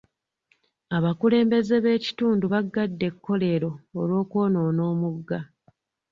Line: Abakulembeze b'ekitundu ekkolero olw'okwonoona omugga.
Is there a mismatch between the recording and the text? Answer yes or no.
yes